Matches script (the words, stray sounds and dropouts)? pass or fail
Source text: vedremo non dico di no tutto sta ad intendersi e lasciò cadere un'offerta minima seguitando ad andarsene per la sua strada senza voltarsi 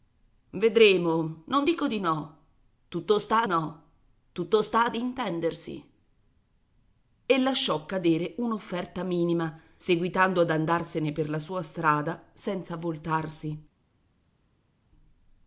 fail